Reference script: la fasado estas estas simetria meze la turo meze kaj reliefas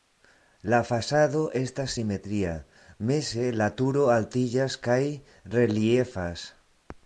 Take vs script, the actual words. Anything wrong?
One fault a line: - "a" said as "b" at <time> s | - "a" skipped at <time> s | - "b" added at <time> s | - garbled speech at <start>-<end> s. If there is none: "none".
- "estas" skipped at 1.9 s
- "meze" said as "altiĝas" at 4.2 s